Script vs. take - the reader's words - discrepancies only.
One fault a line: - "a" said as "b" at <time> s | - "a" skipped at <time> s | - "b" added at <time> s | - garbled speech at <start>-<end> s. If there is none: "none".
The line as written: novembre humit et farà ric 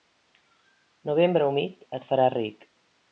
none